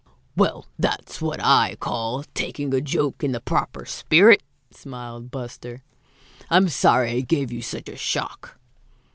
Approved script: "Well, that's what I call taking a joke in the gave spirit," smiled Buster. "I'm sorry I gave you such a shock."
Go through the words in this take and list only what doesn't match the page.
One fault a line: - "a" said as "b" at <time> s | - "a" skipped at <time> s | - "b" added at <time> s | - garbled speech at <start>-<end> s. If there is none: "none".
- "gave" said as "proper" at 3.4 s